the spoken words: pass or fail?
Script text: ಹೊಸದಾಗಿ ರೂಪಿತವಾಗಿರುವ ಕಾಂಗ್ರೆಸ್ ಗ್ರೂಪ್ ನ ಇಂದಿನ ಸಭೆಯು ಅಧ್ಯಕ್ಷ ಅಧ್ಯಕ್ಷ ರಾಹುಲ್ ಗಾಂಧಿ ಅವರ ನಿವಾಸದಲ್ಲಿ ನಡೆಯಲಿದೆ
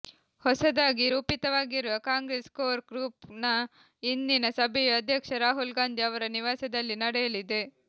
fail